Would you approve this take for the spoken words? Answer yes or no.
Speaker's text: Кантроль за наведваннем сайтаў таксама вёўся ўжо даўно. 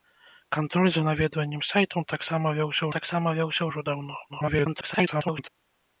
no